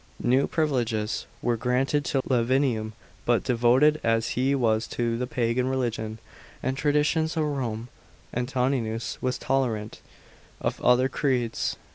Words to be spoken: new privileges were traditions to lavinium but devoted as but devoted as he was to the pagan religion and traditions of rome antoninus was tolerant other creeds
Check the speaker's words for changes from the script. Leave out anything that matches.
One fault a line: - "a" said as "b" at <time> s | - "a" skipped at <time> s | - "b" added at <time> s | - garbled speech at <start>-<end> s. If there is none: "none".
- "traditions" said as "granted" at 1.6 s
- "but devoted as" skipped at 4.3 s
- "of" added at 10.6 s